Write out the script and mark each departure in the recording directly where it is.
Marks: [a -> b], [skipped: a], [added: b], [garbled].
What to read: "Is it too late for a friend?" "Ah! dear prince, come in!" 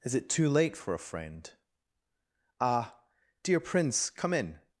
"Is it too late for a friend?" "Ah! dear prince, come in!"